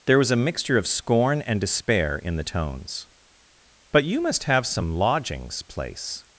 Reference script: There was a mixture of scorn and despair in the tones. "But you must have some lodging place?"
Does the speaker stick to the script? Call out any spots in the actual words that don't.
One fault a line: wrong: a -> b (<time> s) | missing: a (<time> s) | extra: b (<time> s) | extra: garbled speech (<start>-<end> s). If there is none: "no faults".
wrong: lodging -> lodgings (4.9 s)